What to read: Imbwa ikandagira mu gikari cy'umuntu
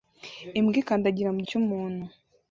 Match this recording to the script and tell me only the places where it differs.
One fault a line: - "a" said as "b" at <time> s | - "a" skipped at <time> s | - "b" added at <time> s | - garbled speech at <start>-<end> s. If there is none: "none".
- "gikari" skipped at 1.4 s